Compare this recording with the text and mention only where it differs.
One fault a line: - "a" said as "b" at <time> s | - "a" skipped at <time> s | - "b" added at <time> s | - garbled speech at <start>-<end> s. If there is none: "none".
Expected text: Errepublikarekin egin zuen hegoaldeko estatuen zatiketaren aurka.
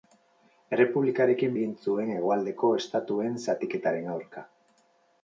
none